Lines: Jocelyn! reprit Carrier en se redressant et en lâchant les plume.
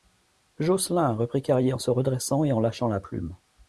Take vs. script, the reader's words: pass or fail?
fail